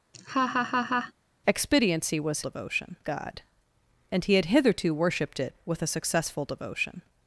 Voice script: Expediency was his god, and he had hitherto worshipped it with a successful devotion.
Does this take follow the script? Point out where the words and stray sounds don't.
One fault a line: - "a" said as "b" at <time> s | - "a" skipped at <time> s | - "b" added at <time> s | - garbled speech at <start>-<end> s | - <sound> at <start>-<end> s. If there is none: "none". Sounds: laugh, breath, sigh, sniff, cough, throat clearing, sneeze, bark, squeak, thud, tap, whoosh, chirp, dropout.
- laugh at 0.1-1.1 s
- "his" said as "devotion" at 2.4 s